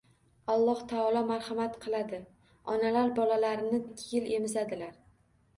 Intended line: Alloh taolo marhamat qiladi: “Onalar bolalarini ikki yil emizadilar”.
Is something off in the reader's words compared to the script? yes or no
no